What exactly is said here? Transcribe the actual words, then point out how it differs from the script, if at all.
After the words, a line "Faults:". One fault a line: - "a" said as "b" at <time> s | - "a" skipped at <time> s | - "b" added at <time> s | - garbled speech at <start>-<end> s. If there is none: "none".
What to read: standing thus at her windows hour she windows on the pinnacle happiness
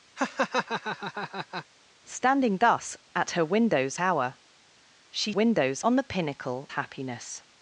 standing thus at her windows hour she windows on the pinnacle happiness
Faults:
none